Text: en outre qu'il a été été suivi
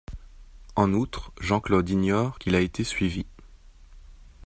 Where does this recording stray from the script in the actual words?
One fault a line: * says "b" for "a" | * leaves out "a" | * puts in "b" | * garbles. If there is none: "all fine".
* puts in "jean claude ignore"
* leaves out "été"